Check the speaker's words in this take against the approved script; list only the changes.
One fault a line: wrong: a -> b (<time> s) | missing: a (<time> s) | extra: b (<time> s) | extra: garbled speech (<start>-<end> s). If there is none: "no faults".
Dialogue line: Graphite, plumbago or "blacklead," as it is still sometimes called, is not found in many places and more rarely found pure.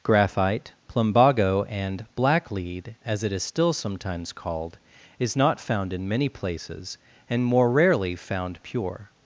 wrong: or -> and (1.7 s)